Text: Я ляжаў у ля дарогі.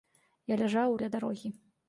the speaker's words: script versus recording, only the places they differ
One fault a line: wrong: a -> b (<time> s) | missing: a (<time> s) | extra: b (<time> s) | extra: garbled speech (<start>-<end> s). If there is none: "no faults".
no faults